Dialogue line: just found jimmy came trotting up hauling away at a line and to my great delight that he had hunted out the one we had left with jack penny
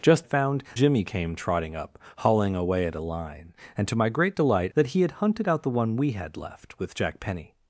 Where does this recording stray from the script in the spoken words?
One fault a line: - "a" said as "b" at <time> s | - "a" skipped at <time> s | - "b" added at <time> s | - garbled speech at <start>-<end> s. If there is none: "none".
none